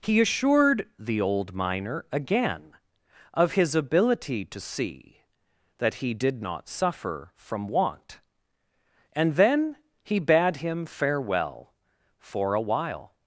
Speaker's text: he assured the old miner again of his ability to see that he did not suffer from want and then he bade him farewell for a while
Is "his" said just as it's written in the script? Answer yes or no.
yes